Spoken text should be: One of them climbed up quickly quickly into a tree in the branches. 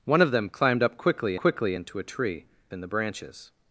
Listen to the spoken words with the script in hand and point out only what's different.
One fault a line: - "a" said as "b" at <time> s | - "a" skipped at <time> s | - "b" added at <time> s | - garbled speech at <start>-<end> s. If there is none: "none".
none